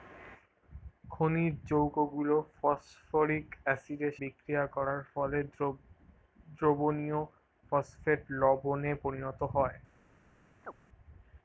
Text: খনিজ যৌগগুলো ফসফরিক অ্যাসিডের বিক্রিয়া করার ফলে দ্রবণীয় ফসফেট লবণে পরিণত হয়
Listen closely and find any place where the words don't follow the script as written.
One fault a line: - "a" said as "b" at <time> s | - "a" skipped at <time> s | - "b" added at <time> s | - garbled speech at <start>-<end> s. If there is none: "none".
none